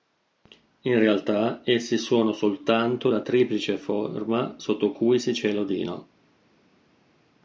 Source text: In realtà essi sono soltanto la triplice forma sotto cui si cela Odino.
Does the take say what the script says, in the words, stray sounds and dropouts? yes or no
yes